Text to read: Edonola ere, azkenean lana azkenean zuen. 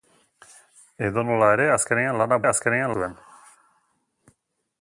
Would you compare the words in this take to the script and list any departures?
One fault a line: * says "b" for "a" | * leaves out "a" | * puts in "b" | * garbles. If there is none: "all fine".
all fine